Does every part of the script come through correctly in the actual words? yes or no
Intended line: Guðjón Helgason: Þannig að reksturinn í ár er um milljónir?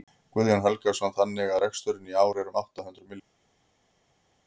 no